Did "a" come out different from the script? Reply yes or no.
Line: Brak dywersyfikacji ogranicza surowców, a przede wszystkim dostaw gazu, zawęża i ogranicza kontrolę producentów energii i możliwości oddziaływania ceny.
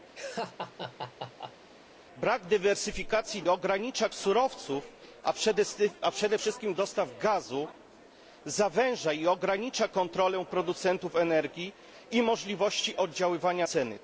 no